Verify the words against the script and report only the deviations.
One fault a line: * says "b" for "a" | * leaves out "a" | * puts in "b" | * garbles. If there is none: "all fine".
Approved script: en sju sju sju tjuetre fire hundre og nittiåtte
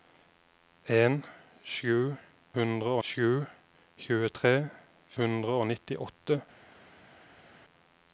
* says "hundre" for "sju"
* leaves out "fire"